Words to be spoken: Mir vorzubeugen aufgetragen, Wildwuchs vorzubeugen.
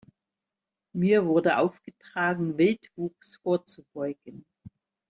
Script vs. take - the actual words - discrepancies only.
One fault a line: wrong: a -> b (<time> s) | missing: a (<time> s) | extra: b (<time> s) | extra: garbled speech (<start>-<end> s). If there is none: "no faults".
wrong: vorzubeugen -> wurde (1.3 s)